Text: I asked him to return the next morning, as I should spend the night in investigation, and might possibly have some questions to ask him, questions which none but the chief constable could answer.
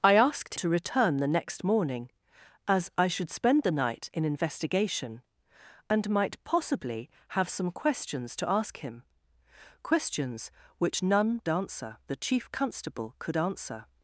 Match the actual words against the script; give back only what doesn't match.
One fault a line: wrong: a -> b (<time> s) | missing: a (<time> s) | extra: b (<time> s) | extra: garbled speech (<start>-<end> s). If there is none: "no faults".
missing: him (0.6 s)
wrong: but -> answer (11.5 s)